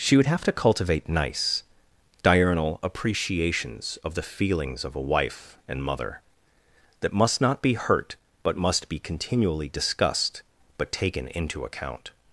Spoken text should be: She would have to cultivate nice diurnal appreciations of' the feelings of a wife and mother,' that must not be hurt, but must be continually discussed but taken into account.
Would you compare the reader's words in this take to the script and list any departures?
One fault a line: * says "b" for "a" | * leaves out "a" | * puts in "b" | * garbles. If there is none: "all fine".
all fine